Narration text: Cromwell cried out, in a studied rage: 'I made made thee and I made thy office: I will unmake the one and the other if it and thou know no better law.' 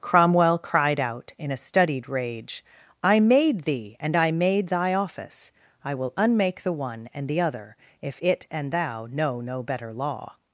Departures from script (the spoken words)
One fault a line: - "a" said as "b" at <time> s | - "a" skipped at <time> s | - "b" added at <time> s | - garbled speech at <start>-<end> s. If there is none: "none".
- "made" skipped at 3.6 s